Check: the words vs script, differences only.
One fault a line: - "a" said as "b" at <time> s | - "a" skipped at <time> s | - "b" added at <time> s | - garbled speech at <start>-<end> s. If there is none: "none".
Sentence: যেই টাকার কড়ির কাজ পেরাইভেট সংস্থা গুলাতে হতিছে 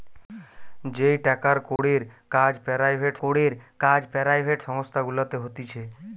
- "কড়ির কাজ পেরাইভেট" added at 3.2 s